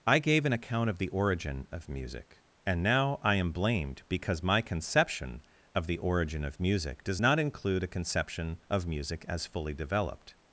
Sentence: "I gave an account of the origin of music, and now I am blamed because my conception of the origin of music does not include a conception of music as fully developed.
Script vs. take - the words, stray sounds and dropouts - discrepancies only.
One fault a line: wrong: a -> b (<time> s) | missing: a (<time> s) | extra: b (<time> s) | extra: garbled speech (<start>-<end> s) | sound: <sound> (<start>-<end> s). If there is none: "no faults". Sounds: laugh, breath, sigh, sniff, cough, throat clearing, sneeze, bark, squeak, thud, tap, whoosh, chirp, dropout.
no faults